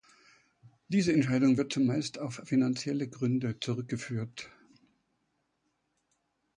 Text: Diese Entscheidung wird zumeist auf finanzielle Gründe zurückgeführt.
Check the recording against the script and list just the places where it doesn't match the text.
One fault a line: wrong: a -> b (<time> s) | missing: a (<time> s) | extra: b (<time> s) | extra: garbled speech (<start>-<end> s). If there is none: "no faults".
no faults